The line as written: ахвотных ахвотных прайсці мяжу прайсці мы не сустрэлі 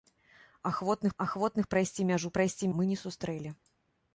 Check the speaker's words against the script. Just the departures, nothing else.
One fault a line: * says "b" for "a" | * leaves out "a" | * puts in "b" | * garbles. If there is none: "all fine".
all fine